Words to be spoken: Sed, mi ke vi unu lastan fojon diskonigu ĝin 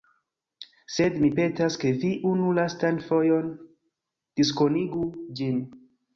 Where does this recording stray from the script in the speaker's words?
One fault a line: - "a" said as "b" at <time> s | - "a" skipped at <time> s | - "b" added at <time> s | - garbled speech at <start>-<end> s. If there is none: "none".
- "petas" added at 1.4 s